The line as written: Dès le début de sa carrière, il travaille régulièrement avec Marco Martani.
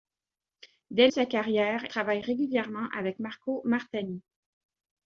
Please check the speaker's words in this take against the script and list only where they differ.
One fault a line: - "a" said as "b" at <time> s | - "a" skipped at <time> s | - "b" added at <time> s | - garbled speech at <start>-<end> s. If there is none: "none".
- "le début" skipped at 1.1 s
- "il" skipped at 1.9 s